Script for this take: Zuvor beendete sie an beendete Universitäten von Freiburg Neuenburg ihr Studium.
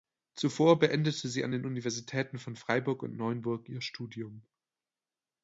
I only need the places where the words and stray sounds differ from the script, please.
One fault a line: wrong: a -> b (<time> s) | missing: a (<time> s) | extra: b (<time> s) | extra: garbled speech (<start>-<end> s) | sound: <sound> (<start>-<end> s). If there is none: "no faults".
wrong: beendete -> den (1.5 s)
extra: und (3.0 s)